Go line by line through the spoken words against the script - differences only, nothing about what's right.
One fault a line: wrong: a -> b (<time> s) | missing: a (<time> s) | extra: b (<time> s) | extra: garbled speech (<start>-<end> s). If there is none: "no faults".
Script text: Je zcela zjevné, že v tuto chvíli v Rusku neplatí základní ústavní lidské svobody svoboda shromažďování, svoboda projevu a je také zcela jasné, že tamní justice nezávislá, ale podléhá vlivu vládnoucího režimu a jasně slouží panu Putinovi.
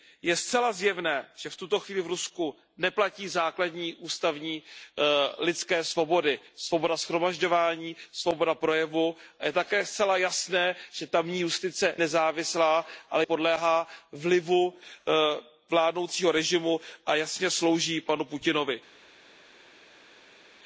no faults